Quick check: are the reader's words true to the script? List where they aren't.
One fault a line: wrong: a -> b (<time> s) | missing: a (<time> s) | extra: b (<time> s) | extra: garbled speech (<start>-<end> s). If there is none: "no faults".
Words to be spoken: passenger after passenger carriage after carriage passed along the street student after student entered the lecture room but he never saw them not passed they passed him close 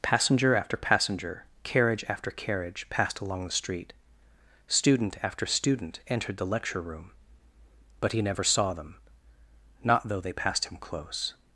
wrong: passed -> though (10.1 s)